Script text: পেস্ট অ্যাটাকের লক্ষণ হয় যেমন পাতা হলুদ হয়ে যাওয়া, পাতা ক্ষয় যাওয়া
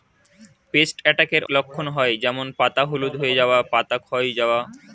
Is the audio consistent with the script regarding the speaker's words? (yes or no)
yes